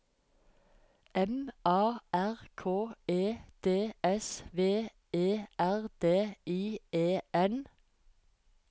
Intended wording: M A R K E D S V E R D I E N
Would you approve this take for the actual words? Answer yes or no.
yes